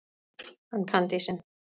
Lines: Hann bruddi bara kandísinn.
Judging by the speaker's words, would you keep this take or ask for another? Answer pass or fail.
fail